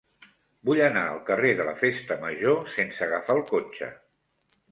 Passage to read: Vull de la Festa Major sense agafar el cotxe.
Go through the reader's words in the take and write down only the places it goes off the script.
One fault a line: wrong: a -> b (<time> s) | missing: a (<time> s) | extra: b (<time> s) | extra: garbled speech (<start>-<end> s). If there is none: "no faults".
extra: anar al carrer (0.8 s)